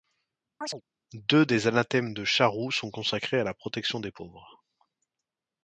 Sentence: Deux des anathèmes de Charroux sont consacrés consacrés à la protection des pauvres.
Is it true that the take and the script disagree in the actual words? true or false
true